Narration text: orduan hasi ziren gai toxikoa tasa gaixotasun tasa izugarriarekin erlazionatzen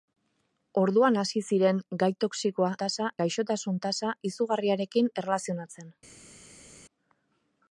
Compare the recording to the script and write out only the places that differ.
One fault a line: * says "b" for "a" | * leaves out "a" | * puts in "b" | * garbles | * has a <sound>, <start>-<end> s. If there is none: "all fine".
all fine